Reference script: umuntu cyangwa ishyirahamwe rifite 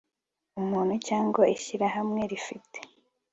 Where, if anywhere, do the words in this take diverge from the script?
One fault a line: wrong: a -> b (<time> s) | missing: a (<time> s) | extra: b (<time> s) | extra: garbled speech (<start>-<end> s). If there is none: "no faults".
no faults